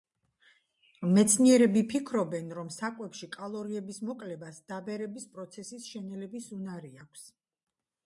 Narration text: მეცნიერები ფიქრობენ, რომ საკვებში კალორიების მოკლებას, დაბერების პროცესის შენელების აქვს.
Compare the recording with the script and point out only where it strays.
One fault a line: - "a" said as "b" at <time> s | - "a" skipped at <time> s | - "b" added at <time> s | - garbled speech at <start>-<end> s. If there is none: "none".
- "უნარი" added at 6.6 s